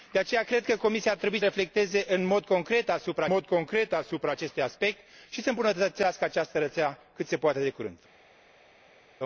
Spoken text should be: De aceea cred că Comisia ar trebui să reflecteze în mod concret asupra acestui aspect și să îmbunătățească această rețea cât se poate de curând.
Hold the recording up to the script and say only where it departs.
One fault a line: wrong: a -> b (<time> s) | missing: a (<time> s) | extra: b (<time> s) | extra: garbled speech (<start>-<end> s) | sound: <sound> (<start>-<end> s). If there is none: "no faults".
missing: să (1.4 s)
extra: mod concret asupra (3.2 s)